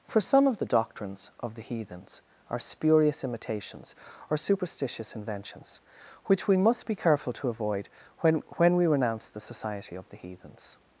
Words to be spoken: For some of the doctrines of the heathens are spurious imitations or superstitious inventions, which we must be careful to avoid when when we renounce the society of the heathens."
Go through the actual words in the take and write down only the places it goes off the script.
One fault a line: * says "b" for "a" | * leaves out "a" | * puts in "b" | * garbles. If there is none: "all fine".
all fine